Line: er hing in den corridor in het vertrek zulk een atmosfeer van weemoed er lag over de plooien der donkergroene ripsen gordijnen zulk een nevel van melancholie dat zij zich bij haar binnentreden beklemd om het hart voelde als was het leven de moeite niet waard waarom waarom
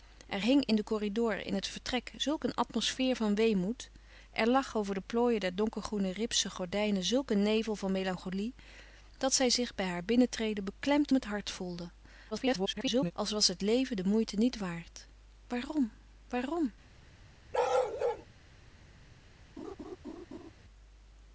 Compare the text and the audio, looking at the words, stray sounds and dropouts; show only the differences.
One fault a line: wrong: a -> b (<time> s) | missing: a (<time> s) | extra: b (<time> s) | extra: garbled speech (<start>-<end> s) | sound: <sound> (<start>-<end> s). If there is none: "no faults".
missing: om (11.1 s)
extra: garbled speech (12.3-13.1 s)
sound: bark (17.5-18.3 s)
sound: laugh (19.6-20.5 s)